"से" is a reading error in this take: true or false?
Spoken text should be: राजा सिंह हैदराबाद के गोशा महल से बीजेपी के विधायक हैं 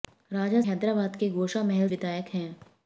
true